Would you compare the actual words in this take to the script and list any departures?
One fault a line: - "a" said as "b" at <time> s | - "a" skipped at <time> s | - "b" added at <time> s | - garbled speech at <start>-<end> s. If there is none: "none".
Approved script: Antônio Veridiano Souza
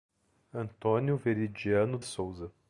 none